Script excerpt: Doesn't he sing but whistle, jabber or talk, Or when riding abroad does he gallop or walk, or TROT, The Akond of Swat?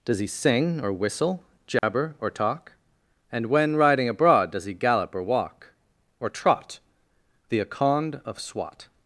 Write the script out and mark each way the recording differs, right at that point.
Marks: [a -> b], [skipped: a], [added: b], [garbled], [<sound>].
[Doesn't -> Does] he sing [but -> or] whistle, jabber [dropout] or talk, [Or -> And] when riding abroad does he gallop or walk, or TROT, The Akond of Swat?